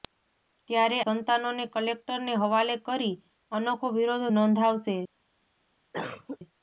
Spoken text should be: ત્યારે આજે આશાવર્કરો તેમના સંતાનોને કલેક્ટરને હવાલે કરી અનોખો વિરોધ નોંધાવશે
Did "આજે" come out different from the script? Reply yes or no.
yes